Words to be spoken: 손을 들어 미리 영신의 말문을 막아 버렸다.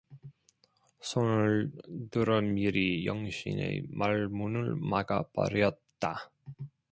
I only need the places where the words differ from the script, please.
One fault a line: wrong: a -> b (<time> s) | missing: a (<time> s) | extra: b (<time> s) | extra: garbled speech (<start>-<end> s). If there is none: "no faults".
no faults